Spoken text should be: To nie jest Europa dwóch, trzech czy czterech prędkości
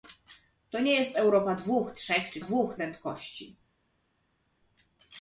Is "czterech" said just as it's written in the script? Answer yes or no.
no